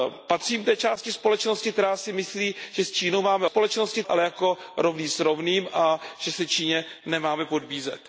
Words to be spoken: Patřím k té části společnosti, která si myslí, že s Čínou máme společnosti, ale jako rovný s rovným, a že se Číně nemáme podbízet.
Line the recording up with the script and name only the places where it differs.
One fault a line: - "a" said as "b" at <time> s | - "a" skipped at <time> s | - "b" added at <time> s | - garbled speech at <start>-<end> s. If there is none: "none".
none